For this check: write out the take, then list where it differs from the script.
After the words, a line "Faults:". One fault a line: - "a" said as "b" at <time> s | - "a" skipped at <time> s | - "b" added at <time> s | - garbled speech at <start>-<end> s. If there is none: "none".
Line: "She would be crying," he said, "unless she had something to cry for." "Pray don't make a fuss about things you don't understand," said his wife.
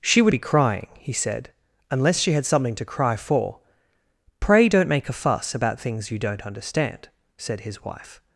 "She would be crying," he said, "unless she had something to cry for." "Pray don't make a fuss about things you don't understand," said his wife.
Faults:
none